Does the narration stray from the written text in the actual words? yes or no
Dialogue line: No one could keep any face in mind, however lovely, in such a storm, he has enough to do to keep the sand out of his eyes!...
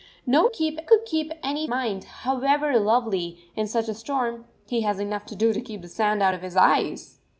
yes